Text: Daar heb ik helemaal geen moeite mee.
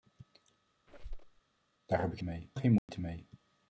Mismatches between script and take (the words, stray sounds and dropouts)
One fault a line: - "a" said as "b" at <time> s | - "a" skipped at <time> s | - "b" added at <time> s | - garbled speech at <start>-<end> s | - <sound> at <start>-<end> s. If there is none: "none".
- squeak at 0.9-1.4 s
- "helemaal" said as "mee" at 2.2 s
- dropout at 2.8-2.9 s